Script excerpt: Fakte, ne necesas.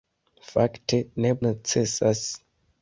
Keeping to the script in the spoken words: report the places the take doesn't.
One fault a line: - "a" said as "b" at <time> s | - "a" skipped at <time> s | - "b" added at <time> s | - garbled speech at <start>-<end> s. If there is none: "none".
none